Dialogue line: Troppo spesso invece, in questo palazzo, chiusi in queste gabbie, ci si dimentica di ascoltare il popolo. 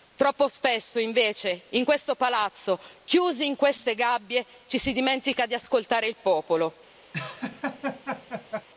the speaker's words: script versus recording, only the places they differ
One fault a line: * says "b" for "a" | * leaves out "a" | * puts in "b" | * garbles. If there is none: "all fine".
all fine